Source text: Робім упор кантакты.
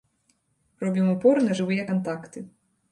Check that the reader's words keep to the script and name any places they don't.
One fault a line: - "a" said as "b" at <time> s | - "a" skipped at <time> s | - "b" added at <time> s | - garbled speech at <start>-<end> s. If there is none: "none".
- "на жывыя" added at 1.5 s